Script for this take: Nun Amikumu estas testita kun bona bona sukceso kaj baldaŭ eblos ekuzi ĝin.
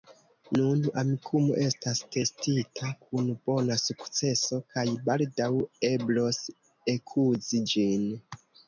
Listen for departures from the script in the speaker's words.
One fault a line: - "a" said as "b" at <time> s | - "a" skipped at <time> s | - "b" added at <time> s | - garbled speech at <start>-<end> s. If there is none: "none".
- "bona" skipped at 3.8 s